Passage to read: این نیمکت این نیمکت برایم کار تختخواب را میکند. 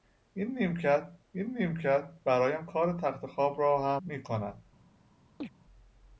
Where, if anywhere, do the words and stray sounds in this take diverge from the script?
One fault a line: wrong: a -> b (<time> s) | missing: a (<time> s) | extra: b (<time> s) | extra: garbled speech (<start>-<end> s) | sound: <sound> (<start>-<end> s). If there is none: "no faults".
sound: chirp (5.4-5.5 s)